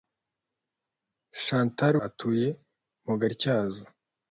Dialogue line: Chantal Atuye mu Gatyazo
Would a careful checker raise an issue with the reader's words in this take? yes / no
no